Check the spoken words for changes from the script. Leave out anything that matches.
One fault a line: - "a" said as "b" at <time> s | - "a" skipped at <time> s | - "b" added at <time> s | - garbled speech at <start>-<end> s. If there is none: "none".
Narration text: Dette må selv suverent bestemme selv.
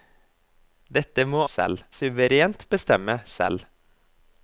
none